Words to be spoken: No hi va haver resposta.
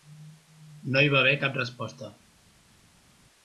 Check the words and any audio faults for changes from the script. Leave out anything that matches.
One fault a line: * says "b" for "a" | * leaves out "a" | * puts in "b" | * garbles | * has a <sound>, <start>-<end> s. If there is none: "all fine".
* puts in "cap"